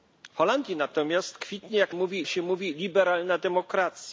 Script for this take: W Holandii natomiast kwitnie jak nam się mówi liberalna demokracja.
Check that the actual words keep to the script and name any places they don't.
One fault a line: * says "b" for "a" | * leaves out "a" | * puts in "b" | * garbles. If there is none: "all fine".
* says "mówi" for "nam"